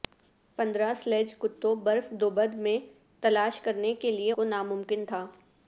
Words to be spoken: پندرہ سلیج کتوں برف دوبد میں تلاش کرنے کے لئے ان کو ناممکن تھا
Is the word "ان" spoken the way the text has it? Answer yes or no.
no